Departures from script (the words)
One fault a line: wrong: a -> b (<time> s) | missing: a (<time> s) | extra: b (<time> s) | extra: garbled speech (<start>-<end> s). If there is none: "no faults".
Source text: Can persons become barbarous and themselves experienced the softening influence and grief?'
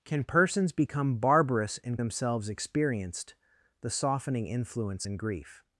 no faults